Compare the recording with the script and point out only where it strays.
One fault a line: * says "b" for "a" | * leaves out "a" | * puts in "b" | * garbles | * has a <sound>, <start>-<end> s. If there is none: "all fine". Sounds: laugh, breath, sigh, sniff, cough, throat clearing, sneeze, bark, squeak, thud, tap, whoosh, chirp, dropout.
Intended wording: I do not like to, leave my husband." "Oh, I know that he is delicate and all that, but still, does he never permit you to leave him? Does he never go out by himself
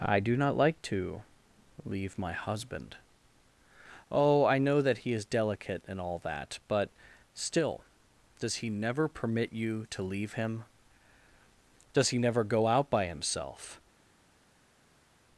all fine